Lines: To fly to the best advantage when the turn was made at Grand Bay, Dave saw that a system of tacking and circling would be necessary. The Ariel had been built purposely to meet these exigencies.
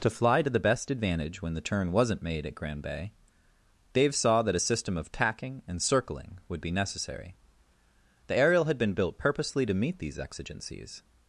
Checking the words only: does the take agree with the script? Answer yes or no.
no